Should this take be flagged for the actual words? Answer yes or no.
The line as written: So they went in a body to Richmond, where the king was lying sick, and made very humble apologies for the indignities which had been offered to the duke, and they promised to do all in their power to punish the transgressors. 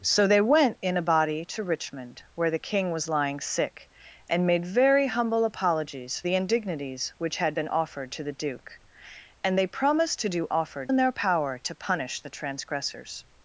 yes